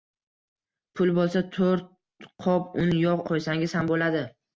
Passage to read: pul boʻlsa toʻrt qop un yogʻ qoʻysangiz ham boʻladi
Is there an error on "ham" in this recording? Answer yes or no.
no